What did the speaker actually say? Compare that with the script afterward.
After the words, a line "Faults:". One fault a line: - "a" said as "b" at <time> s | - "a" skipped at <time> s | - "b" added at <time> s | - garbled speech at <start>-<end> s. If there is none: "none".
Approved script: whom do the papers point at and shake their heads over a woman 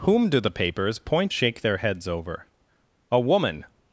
whom do the papers point shake their heads over a woman
Faults:
- "at and" skipped at 1.4 s